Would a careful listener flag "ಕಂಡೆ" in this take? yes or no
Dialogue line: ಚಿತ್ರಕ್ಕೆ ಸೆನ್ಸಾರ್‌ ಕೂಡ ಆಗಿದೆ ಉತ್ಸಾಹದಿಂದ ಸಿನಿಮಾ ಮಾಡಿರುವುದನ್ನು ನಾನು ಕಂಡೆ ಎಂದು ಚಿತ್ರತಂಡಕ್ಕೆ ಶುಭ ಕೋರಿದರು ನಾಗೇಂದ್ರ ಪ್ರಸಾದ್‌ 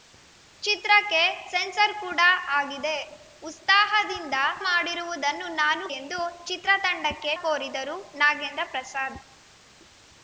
yes